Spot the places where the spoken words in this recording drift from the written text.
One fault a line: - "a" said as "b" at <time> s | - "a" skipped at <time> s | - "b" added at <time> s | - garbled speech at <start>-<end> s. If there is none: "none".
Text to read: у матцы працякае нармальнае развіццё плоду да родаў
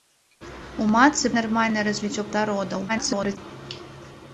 - "працякае" skipped at 1.3 s
- "плоду" skipped at 2.3 s
- garbled speech at 2.9-3.4 s